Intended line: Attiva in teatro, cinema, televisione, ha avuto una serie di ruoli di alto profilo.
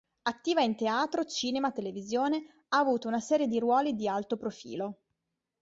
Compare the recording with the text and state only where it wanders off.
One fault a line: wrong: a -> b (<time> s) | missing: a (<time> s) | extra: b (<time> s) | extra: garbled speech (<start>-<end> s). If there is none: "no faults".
no faults